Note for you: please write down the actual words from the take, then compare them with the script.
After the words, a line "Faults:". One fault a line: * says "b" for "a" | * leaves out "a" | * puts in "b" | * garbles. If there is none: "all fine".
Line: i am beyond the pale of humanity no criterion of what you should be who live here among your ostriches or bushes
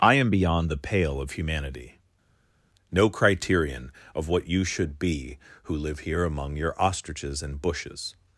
i am beyond the pale of humanity no criterion of what you should be who live here among your ostriches and bushes
Faults:
* says "and" for "or"